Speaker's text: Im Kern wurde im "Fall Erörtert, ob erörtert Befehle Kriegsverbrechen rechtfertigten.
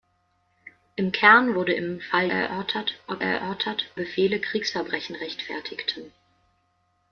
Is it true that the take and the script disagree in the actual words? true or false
false